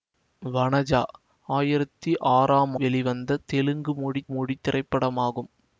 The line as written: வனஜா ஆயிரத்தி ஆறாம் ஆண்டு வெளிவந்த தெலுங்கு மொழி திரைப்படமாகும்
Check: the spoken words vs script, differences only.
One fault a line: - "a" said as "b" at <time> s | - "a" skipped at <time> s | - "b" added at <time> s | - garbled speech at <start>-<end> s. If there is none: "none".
- "ஆண்டு" skipped at 2.8 s
- "மொழி" added at 4.3 s